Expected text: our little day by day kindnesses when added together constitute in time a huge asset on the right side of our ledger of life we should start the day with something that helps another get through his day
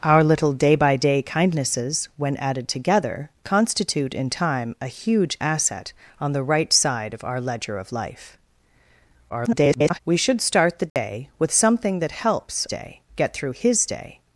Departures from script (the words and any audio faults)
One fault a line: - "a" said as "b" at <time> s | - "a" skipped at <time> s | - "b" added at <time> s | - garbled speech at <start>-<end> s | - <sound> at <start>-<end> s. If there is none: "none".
- garbled speech at 9.3-10.0 s
- dropout at 10.9-11.0 s
- "another" said as "day" at 12.7 s